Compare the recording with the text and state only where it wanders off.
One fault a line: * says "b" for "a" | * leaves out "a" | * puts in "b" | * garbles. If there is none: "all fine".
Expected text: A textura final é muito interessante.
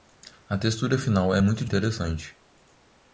all fine